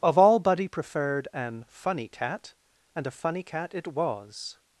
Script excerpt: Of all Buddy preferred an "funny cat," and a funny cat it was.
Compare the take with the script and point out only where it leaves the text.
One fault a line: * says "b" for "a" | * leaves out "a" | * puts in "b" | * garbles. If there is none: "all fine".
all fine